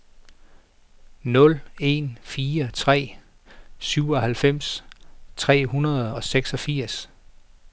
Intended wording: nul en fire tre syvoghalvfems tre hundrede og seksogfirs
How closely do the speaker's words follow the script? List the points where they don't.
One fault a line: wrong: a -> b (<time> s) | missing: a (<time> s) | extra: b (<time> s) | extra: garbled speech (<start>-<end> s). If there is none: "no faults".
no faults